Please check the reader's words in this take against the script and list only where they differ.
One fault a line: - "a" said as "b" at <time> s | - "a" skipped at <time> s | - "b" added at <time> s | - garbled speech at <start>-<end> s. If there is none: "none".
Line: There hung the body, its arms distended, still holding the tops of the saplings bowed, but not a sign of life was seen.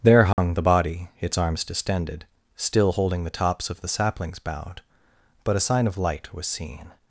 - "not" skipped at 5.5 s
- "life" said as "light" at 6.0 s